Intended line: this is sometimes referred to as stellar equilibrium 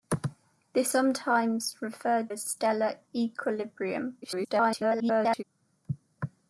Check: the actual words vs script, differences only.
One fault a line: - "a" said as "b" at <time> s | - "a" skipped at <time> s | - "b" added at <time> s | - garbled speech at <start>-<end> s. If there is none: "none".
- "is" skipped at 0.9 s
- "to" skipped at 2.3 s
- garbled speech at 4.2-5.4 s